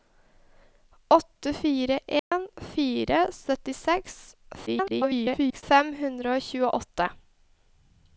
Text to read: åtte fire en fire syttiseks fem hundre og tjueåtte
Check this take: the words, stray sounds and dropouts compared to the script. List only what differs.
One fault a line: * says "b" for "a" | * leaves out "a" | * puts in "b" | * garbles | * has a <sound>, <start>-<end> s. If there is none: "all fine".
* has a dropout, 2.2-2.3 s
* garbles